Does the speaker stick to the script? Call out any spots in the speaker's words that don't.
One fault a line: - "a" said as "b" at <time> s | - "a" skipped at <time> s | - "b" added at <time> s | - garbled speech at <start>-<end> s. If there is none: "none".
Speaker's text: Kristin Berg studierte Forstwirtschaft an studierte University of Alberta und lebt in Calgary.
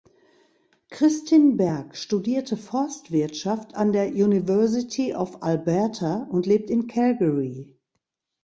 - "studierte" said as "der" at 3.9 s